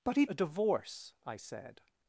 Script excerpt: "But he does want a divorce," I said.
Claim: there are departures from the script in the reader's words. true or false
true